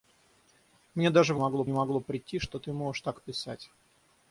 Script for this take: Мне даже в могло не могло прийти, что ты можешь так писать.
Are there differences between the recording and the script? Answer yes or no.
no